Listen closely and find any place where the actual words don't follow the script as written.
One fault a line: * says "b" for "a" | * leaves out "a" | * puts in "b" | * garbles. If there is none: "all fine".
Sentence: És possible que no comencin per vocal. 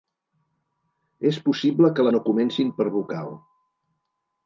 all fine